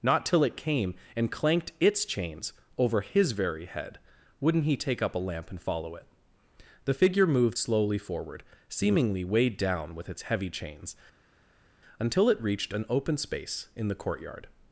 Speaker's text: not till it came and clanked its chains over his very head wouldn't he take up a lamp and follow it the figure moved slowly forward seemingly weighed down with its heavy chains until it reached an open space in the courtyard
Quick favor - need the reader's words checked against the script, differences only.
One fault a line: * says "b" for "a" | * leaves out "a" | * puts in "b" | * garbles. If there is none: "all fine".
all fine